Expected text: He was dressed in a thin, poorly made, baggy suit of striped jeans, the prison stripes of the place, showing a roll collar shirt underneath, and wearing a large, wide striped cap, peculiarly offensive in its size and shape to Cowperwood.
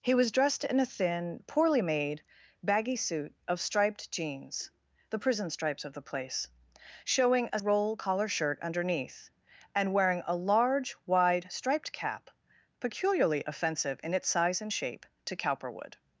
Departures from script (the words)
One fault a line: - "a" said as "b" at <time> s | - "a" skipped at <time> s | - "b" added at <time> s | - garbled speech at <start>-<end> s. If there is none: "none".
none